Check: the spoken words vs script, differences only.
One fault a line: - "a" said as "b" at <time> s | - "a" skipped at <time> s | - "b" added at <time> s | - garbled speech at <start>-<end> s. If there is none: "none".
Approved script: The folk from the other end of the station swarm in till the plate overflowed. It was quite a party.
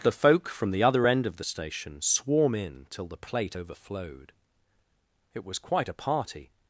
none